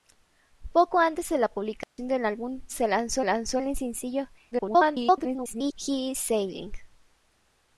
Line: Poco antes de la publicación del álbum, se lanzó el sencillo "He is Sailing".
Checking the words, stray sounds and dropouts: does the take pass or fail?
fail